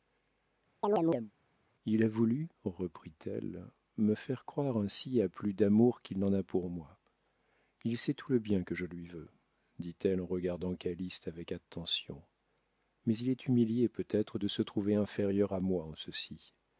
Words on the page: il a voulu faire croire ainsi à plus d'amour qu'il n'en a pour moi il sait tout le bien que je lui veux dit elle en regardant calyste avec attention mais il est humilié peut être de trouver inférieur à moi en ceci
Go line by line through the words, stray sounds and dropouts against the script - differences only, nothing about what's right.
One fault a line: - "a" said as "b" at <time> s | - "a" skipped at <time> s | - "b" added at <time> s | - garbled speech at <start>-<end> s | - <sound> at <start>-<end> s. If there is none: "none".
- chirp at 0.8-1.3 s
- "reprit elle me" added at 2.6 s
- "se" added at 14.5 s